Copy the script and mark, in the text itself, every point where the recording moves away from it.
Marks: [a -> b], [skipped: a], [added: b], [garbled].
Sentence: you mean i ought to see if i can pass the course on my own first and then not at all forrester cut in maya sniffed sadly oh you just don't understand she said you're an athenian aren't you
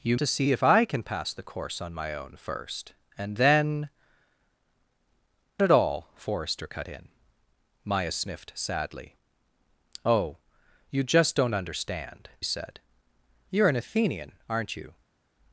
you [skipped: mean i ought] to see if i can pass the course on my own first and then [skipped: not] at all forrester cut in maya sniffed sadly oh you just don't understand [skipped: she] said you're an athenian aren't you